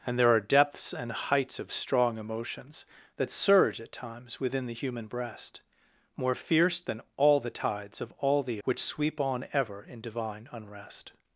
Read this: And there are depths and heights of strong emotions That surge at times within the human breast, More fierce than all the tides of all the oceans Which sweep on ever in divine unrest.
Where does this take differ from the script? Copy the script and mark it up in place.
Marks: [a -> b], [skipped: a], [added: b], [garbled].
And there are depths and heights of strong emotions That surge at times within the human breast, More fierce than all the tides of all the [skipped: oceans] Which sweep on ever in divine unrest.